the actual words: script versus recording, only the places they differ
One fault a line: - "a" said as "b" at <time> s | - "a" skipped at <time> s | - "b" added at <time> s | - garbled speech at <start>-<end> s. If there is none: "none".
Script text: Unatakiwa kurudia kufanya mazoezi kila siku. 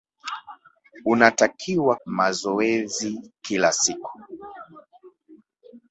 - "kurudia kufanya" skipped at 1.9 s